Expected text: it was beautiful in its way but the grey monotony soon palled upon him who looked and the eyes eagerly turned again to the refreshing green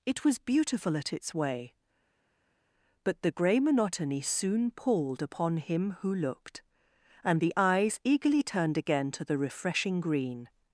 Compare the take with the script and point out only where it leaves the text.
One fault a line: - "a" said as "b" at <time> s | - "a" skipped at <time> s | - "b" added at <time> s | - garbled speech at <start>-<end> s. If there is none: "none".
- "in" said as "at" at 1.0 s